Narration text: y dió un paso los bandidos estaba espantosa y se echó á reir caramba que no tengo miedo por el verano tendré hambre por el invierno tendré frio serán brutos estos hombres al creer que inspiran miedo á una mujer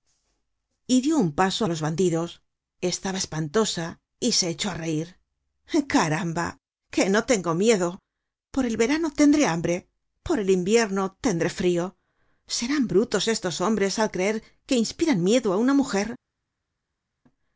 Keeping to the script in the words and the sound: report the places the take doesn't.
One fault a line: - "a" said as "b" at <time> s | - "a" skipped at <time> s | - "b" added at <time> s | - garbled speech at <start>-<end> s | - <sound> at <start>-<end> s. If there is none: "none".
none